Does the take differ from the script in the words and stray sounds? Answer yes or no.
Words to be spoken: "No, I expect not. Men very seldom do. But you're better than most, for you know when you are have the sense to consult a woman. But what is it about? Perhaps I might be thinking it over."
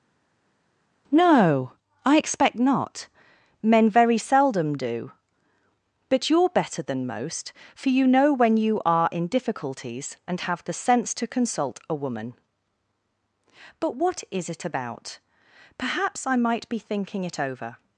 yes